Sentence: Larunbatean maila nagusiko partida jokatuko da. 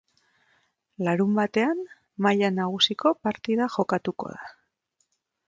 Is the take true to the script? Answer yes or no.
yes